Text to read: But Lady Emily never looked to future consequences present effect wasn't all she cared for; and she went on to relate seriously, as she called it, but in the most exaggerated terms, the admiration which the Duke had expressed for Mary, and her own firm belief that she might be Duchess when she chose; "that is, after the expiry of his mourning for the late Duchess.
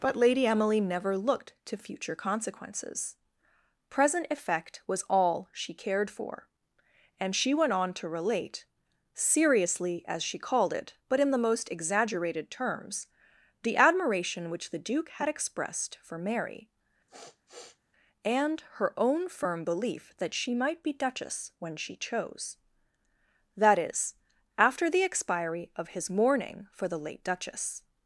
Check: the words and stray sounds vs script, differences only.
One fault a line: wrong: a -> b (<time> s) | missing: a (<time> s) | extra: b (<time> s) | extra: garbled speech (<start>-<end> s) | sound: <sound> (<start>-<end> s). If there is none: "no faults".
wrong: wasn't -> was (4.9 s)
sound: sniff (17.1-17.8 s)